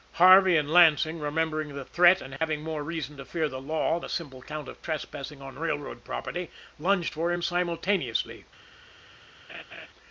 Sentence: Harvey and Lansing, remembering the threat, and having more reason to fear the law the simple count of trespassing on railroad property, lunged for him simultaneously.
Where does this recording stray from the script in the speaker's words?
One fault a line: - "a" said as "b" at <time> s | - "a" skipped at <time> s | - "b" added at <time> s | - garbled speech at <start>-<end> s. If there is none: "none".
none